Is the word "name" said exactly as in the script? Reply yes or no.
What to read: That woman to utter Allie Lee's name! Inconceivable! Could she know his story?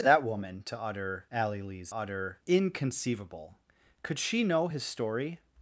no